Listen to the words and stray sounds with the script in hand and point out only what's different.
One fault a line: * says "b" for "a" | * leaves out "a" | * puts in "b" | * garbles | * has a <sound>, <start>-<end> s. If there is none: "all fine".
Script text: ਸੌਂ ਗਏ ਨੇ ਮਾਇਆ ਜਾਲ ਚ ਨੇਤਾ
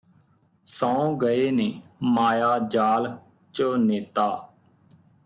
all fine